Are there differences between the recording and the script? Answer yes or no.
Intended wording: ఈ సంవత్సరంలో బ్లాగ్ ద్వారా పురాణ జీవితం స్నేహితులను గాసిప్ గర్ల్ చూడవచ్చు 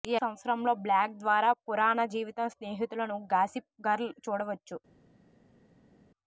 no